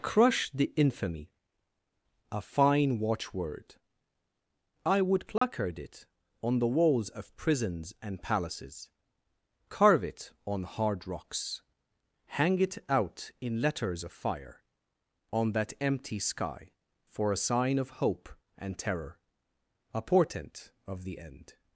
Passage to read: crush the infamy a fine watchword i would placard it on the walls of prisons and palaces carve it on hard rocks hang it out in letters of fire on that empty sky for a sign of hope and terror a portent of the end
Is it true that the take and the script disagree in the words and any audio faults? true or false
true